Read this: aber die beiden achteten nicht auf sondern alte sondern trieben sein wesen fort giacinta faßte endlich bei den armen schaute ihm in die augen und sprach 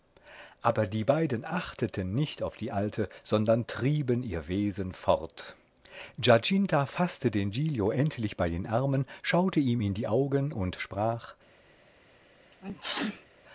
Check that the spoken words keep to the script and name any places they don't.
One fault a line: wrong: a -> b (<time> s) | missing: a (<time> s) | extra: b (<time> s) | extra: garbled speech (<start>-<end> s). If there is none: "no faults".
wrong: sondern -> die (2.6 s)
wrong: sein -> ihr (4.2 s)
extra: den giglio (7.3 s)